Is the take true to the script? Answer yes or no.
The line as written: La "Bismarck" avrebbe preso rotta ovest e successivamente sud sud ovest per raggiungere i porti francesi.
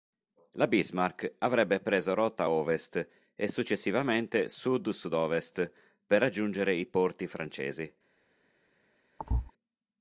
yes